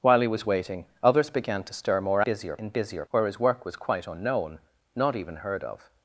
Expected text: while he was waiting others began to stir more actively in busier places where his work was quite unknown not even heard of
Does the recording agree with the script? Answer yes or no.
no